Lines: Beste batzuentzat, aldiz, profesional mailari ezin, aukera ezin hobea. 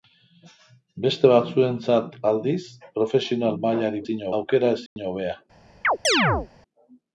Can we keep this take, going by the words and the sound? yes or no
no